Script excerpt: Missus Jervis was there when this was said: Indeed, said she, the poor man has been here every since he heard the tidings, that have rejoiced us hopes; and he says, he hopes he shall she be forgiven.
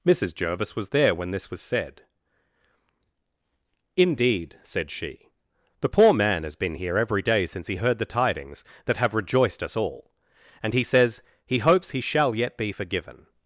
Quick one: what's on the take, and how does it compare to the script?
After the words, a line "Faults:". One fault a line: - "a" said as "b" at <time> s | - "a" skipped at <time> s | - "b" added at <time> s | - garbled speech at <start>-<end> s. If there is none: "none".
Missus Jervis was there when this was said: Indeed, said she, the poor man has been here every day since he heard the tidings, that have rejoiced us all; and he says, he hopes he shall yet be forgiven.
Faults:
- "day" added at 7.2 s
- "hopes" said as "all" at 9.7 s
- "she" said as "yet" at 12.3 s